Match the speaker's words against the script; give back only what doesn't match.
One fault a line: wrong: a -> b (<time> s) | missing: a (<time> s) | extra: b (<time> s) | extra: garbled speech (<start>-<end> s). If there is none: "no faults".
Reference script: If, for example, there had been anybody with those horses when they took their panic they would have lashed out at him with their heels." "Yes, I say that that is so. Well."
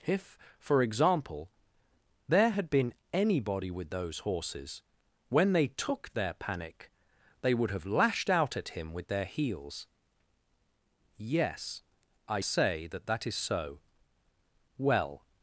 no faults